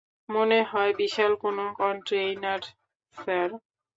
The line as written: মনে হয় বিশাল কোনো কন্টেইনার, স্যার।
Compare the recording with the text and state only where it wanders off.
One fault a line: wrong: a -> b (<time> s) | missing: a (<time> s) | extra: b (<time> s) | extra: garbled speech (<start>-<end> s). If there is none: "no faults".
no faults